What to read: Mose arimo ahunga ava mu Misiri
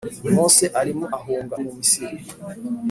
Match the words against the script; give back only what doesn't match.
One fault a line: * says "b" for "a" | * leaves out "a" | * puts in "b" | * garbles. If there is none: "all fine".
* leaves out "ava"